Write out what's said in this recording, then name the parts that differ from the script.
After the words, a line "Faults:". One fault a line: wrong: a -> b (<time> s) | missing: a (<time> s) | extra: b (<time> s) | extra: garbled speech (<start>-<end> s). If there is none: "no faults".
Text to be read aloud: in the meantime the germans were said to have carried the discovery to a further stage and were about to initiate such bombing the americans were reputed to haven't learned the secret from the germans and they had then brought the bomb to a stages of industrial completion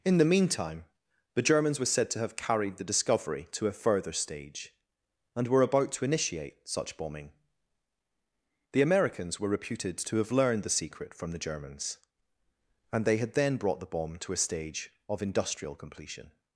in the meantime the germans were said to have carried the discovery to a further stage and were about to initiate such bombing the americans were reputed to have learned the secret from the germans and they had then brought the bomb to a stage of industrial completion
Faults:
wrong: haven't -> have (10.2 s)
wrong: stages -> stage (14.4 s)